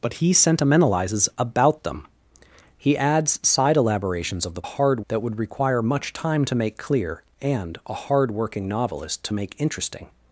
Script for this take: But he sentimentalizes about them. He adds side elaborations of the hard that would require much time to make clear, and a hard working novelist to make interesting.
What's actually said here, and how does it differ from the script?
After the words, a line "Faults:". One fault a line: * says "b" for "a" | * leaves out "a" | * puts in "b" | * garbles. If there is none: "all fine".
But he sentimentalizes about them. He adds side elaborations of the hard that would require much time to make clear, and a hard working novelist to make interesting.
Faults:
all fine